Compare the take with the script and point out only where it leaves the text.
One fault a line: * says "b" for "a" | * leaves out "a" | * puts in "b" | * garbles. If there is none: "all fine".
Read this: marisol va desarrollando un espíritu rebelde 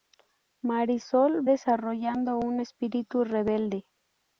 * leaves out "va"